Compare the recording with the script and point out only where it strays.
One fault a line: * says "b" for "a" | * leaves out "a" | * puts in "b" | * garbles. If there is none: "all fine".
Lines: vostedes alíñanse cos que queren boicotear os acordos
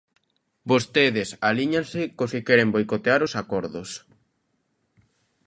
all fine